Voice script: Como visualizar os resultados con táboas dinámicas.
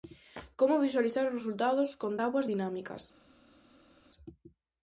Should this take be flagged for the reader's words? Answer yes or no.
no